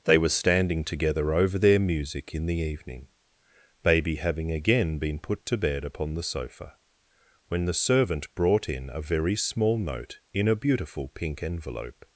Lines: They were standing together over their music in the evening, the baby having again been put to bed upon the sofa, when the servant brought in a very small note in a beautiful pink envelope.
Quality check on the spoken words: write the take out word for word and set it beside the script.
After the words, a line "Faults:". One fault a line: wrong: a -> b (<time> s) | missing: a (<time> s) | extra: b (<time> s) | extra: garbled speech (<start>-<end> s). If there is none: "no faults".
They were standing together over their music in the evening, baby having again been put to bed upon the sofa, when the servant brought in a very small note in a beautiful pink envelope.
Faults:
missing: the (3.1 s)